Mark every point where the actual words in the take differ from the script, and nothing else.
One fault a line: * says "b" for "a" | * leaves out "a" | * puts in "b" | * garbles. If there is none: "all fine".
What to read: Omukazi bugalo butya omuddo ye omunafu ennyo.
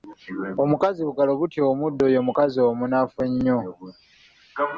* puts in "mukazi"